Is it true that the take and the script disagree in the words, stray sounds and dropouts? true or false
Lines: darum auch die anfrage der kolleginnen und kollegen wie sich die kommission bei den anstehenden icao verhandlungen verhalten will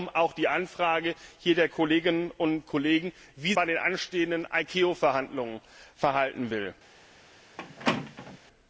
true